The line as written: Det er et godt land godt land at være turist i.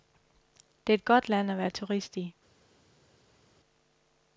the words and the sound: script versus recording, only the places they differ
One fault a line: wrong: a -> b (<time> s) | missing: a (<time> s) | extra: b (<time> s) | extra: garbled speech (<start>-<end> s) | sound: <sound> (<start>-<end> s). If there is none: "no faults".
missing: godt land (1.5 s)